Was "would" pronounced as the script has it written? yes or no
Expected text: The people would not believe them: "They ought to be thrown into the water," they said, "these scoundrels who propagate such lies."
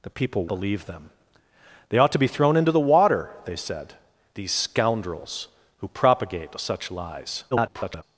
no